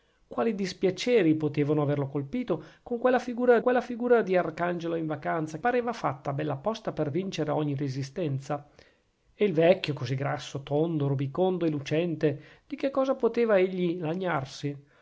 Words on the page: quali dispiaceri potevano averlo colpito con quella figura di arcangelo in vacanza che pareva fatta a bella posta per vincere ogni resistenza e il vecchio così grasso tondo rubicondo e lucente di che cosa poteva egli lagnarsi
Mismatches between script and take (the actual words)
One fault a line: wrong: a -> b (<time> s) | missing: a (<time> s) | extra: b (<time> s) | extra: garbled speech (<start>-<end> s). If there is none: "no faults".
extra: quella figura (3.6 s)
missing: che (5.6 s)